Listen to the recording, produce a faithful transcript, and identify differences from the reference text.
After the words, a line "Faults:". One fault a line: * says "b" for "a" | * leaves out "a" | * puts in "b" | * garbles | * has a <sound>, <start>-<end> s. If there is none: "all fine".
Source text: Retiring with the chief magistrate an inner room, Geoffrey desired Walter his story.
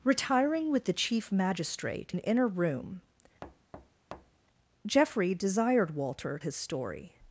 Retiring with the chief magistrate an inner room, Geoffrey desired Walter his story.
Faults:
* has a thud, 3.4-4.5 s